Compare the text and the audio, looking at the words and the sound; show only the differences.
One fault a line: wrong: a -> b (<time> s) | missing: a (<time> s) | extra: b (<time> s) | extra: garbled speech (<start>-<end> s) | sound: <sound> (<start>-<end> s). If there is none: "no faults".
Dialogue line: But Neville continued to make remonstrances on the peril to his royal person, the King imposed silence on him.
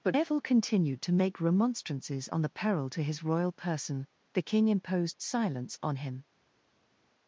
no faults